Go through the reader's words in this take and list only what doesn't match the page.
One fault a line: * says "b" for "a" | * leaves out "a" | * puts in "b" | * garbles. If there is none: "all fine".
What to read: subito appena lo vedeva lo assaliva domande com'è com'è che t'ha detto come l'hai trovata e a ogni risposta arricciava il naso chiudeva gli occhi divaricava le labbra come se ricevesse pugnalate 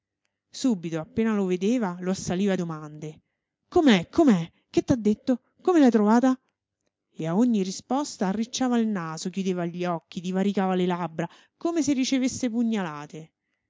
all fine